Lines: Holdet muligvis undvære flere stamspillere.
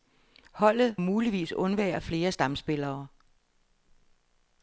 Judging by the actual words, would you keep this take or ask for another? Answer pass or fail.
pass